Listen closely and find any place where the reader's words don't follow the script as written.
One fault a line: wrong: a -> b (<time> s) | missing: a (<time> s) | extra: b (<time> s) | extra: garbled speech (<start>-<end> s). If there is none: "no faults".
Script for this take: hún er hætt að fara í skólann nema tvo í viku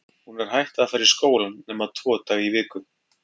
extra: daga (2.3 s)